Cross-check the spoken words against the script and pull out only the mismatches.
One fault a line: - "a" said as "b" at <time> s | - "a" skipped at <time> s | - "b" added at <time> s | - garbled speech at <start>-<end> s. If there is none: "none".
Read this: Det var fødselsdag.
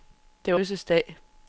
none